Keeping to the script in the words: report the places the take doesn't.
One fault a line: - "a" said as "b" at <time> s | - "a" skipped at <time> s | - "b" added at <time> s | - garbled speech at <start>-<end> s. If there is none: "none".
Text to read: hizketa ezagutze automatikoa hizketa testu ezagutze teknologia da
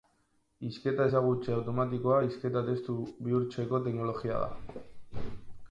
- "ezagutze" said as "bihurtzeko" at 3.3 s